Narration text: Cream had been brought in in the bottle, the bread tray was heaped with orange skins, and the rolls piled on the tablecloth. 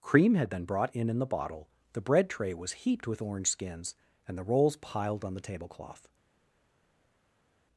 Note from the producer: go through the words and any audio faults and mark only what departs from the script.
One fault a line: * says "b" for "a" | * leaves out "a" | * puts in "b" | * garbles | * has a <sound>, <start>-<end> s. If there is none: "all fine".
all fine